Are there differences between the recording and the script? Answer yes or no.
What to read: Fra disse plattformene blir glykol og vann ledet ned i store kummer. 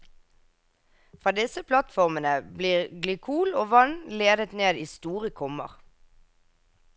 no